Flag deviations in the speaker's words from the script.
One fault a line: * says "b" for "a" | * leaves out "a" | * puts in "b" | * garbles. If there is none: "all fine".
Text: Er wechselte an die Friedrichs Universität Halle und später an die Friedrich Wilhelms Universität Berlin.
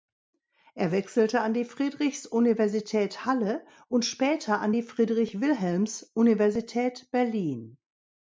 all fine